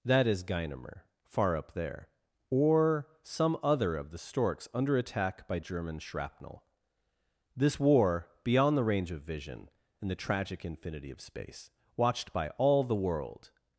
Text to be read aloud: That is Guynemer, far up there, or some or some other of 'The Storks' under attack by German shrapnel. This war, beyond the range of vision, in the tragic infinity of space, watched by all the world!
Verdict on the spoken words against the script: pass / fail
fail